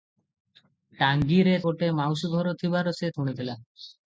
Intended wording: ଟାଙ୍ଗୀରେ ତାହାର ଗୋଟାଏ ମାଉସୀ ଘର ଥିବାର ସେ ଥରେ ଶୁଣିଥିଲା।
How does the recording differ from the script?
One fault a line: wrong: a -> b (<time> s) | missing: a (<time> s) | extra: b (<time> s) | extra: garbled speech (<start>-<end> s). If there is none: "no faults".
missing: ତାହାର (1.5 s)
missing: ଥରେ (3.1 s)